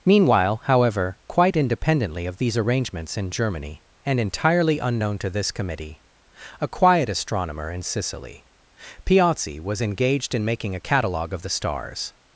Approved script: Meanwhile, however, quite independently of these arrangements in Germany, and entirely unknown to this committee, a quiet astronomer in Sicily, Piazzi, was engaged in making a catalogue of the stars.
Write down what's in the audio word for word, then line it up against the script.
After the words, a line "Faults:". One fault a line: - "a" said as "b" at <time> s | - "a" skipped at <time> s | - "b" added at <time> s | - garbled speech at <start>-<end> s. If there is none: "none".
Meanwhile, however, quite independently of these arrangements in Germany, and entirely unknown to this committee, a quiet astronomer in Sicily, Piazzi, was engaged in making a catalogue of the stars.
Faults:
none